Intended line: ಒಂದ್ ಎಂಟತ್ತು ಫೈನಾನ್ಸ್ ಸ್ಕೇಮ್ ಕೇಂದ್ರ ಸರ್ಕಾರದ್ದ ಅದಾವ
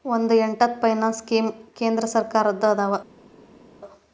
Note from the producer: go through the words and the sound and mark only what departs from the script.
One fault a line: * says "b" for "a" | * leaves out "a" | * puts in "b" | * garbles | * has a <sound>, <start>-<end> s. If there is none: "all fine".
all fine